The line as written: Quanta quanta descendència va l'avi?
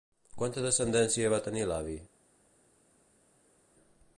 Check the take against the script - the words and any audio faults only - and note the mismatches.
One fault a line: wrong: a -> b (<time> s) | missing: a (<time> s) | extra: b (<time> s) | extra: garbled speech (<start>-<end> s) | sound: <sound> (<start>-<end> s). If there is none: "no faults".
missing: quanta (0.6 s)
extra: tenir (1.5 s)